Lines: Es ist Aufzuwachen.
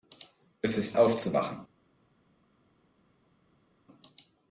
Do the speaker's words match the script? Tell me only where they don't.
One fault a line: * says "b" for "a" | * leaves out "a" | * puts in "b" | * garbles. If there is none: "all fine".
all fine